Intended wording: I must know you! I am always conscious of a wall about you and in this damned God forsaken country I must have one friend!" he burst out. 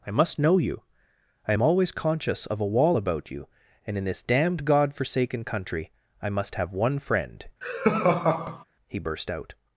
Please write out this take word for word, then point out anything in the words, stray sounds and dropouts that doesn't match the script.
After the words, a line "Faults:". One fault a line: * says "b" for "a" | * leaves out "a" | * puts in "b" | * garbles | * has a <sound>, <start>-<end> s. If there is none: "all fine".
I must know you! I am always conscious of a wall about you and in this damned God forsaken country I must have one friend!" he burst out.
Faults:
* has a laugh, 7.6-8.6 s